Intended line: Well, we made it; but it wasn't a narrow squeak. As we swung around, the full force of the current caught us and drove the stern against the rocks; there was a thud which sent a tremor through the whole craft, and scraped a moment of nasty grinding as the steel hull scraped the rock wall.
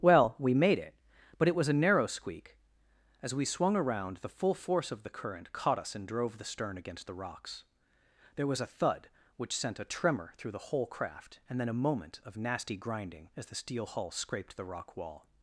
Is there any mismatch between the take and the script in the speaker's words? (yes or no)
yes